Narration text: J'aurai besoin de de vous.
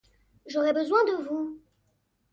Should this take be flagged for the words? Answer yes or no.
yes